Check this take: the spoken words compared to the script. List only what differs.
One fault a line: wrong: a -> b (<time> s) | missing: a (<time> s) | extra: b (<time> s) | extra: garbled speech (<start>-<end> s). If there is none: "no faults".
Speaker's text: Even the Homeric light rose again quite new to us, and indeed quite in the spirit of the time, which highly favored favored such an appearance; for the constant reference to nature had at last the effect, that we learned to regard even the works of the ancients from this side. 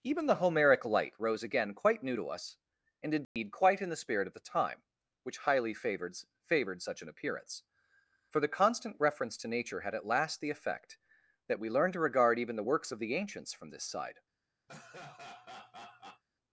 no faults